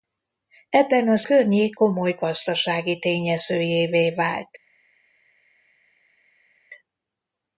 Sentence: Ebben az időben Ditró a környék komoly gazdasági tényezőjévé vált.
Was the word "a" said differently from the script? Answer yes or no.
yes